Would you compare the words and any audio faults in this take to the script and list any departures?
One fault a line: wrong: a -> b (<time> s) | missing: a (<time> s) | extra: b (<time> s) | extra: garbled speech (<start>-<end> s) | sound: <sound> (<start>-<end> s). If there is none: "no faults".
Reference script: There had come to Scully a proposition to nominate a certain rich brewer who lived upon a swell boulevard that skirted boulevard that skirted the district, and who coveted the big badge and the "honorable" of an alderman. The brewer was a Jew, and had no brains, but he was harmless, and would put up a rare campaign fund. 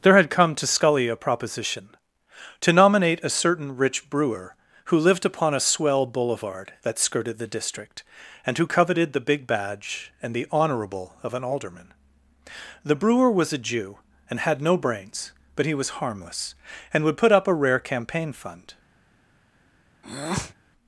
missing: boulevard that skirted (7.4 s)
sound: breath (20.0-20.5 s)